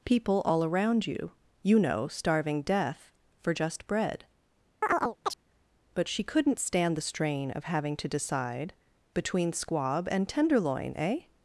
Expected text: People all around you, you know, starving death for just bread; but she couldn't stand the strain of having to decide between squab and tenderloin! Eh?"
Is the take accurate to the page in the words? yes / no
yes